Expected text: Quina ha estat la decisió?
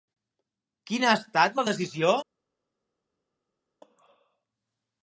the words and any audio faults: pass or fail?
pass